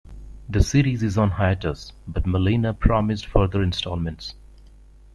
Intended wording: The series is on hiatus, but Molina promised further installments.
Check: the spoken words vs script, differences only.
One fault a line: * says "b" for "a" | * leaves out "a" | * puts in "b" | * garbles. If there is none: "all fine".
all fine